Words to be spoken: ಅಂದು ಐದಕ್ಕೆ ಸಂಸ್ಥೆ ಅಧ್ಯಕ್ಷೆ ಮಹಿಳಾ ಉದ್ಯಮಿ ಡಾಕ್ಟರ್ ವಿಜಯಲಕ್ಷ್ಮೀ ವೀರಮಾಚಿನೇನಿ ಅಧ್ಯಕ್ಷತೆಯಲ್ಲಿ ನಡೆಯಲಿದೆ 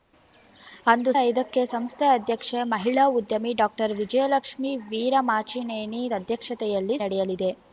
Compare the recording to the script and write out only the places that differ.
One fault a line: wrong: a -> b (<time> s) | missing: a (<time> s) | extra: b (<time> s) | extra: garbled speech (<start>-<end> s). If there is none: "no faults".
no faults